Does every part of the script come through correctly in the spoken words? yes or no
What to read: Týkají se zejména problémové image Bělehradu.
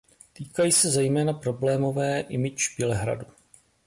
yes